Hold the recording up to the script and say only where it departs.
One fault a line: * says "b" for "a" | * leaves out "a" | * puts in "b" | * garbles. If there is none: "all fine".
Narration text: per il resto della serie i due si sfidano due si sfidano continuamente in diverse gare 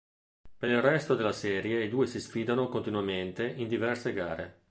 * leaves out "due si sfidano"